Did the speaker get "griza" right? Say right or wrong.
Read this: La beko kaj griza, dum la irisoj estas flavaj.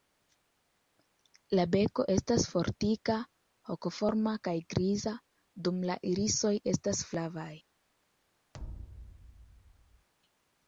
right